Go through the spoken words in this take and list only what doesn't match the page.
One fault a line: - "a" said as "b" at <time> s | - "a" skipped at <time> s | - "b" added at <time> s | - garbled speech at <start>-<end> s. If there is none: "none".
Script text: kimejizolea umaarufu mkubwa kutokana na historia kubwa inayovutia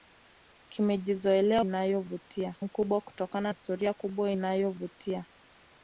- "umaarufu" said as "inayovutia" at 1.6 s
- "na" skipped at 3.5 s